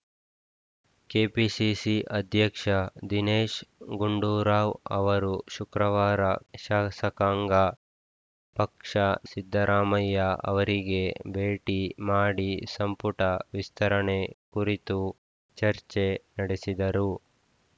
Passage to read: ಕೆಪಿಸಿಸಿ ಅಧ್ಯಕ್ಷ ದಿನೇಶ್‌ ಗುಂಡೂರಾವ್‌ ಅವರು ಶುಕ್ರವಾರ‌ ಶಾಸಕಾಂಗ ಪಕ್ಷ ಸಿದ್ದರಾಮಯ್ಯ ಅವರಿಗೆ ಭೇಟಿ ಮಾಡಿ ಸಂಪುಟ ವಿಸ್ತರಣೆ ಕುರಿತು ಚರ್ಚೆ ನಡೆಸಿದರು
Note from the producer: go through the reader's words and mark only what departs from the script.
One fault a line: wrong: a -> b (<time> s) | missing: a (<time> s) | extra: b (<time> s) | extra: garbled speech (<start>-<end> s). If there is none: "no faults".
no faults